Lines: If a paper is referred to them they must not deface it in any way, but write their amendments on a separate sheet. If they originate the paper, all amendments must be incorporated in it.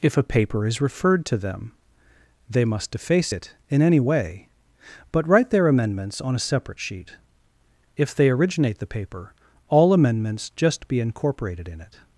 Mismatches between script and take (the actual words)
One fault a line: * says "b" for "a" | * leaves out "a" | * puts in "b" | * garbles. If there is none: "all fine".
* leaves out "not"
* says "just" for "must"